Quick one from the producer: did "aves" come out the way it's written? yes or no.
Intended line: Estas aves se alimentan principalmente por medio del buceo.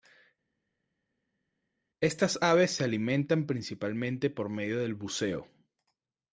yes